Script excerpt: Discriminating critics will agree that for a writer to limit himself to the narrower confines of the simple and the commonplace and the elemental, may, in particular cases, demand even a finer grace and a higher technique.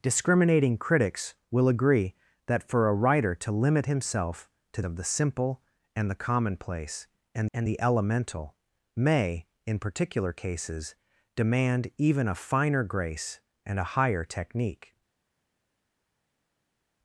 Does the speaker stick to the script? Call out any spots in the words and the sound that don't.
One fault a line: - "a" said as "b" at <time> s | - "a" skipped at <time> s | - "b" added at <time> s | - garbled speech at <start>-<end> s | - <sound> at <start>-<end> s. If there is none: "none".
- "the narrower confines" skipped at 4.8 s
- "and" added at 7.5 s